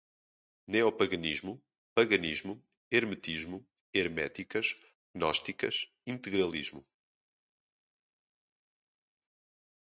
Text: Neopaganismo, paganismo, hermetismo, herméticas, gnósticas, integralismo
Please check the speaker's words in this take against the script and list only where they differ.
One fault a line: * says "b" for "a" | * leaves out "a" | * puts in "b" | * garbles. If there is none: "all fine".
all fine